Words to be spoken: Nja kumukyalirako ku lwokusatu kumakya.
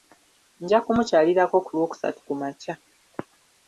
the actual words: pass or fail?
pass